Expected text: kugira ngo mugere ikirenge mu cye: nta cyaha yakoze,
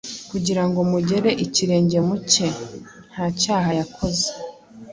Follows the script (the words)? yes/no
yes